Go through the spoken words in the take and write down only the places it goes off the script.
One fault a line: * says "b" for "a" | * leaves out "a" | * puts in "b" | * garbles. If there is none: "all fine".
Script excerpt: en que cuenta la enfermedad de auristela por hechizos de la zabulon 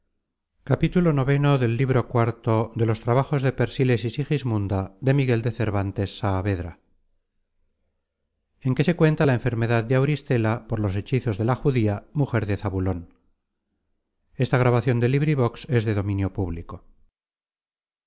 * puts in "se"
* puts in "los"
* puts in "judía mujer de"